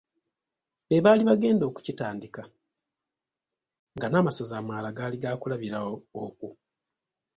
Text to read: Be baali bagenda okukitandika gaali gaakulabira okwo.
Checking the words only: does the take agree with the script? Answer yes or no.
no